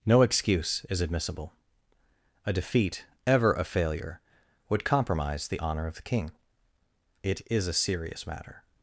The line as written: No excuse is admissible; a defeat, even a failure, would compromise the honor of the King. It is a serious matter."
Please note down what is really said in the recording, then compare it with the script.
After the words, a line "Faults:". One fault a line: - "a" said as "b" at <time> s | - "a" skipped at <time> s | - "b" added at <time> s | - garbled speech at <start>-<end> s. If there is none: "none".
No excuse is admissible; a defeat, ever a failure, would compromise the honor of the King. It is a serious matter."
Faults:
- "even" said as "ever" at 3.3 s